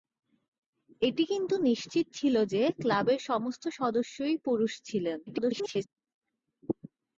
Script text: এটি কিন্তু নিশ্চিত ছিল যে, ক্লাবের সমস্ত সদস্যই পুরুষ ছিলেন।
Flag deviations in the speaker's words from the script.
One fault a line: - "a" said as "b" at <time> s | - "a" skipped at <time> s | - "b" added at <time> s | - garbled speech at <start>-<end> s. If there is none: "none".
- garbled speech at 5.3-5.9 s